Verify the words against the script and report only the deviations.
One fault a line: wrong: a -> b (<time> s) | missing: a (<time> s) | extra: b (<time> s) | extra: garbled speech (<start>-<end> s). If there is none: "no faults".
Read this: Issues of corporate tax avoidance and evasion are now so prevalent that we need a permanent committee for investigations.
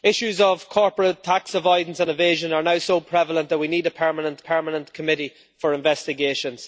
extra: permanent (4.4 s)